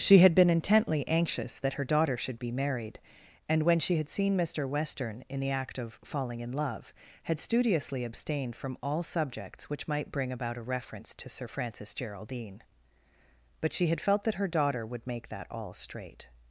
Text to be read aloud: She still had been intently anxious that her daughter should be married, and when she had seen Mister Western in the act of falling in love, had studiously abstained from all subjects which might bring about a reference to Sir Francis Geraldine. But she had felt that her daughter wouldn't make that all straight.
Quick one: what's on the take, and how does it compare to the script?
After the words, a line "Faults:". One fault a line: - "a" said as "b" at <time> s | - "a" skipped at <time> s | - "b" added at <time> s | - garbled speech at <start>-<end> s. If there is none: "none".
She had been intently anxious that her daughter should be married, and when she had seen Mister Western in the act of falling in love, had studiously abstained from all subjects which might bring about a reference to Sir Francis Geraldine. But she had felt that her daughter would make that all straight.
Faults:
- "still" skipped at 0.2 s
- "wouldn't" said as "would" at 14.9 s